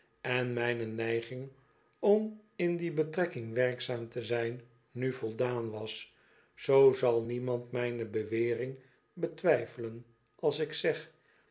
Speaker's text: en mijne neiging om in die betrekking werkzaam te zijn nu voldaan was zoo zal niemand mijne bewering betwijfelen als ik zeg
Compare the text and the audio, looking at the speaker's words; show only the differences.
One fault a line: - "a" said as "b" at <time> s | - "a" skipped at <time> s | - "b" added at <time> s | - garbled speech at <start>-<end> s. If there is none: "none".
none